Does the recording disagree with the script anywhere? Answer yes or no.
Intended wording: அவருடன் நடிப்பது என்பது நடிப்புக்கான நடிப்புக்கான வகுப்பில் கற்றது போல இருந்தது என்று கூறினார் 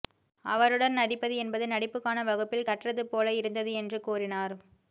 yes